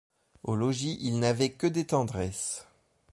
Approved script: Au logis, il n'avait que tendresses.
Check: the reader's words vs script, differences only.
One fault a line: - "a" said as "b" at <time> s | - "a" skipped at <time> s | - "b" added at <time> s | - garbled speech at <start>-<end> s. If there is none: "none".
- "des" added at 1.7 s